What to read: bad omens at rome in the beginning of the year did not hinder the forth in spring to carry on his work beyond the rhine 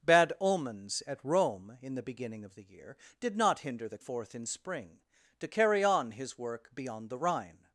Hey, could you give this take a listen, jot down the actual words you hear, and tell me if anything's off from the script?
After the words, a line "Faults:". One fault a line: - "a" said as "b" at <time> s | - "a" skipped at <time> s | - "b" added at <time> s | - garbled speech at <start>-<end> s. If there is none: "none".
bad omens at rome in the beginning of the year did not hinder the forth in spring to carry on his work beyond the rhine
Faults:
none